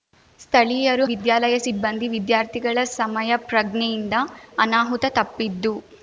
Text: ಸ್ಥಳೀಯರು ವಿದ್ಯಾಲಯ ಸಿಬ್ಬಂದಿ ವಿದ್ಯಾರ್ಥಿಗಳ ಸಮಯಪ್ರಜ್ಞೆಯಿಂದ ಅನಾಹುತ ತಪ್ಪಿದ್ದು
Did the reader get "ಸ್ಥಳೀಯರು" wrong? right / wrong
right